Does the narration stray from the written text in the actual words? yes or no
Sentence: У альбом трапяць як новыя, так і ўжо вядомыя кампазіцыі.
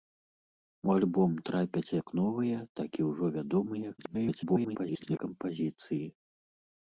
yes